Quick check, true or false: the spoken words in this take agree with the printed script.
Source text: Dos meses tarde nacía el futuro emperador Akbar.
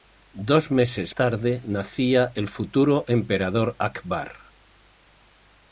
true